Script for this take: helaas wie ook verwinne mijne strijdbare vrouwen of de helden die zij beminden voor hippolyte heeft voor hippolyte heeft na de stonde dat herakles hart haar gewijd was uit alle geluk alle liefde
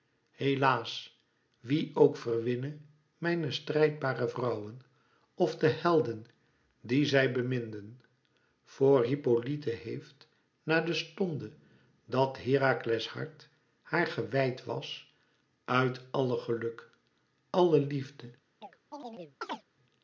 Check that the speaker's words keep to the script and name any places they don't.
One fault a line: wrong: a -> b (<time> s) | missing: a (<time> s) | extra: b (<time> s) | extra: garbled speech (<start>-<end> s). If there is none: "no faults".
missing: voor hippolyte heeft (10.3 s)